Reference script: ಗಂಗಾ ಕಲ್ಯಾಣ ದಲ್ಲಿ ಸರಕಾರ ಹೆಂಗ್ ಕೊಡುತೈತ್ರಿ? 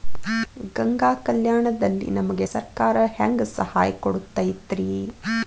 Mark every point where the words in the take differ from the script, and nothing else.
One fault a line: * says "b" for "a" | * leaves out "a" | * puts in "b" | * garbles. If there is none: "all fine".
* puts in "ನಮಗೆ"
* puts in "ಸಹಾಯ"